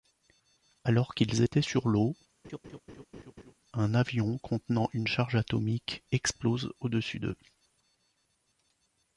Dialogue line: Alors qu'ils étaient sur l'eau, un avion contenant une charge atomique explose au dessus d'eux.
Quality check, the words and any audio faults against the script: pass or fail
fail